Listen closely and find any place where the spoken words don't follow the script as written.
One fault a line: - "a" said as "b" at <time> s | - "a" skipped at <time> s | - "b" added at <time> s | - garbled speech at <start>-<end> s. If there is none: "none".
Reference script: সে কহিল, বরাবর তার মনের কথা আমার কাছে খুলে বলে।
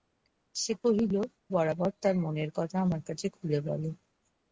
none